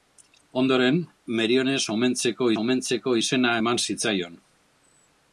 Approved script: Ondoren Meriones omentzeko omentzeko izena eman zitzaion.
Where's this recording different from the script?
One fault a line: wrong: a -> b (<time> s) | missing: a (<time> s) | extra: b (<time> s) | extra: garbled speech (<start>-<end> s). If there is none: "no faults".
no faults